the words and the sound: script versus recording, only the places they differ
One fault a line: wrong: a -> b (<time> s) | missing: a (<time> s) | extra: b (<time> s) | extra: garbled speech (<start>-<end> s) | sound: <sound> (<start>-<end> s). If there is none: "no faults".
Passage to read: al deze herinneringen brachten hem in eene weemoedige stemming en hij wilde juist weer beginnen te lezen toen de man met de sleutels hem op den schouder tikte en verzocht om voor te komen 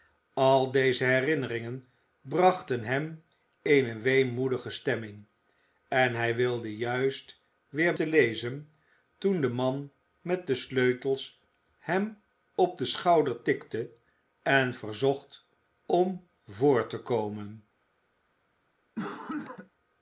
missing: in (3.2 s)
missing: beginnen (7.9 s)
sound: cough (19.0-19.7 s)